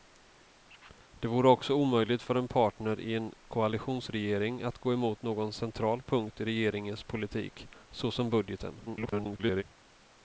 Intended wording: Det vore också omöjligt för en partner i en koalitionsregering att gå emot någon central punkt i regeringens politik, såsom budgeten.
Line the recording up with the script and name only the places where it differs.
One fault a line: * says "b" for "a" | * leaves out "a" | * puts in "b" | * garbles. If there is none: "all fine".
* garbles